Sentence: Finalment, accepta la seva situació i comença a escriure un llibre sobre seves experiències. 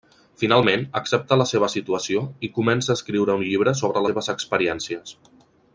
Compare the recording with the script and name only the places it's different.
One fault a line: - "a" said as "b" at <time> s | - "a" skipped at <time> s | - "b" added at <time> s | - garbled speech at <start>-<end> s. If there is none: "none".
none